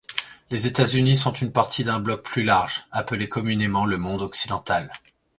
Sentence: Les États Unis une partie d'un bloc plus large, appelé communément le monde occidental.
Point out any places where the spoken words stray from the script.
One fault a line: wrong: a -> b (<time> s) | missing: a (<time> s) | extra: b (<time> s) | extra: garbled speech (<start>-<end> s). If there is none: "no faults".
extra: sont (1.1 s)